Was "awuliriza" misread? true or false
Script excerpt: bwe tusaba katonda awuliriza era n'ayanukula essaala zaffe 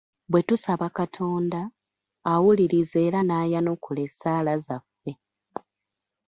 false